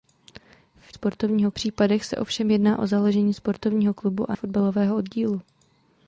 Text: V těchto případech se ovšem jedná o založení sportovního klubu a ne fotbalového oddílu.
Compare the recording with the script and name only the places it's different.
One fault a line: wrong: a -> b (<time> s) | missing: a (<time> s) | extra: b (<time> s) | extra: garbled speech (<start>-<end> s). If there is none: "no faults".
wrong: těchto -> sportovního (0.9 s)
missing: ne (4.4 s)